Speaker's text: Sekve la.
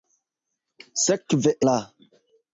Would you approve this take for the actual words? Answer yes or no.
yes